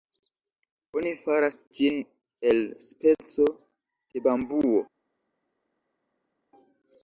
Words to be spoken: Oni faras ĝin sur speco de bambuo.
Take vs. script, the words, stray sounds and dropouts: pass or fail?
fail